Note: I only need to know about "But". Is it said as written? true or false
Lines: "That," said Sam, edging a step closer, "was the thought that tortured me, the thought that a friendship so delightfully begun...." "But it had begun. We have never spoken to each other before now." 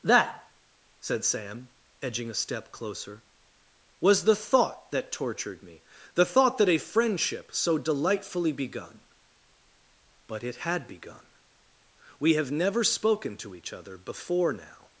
true